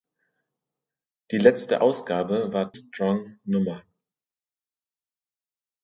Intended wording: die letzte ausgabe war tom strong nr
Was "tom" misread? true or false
true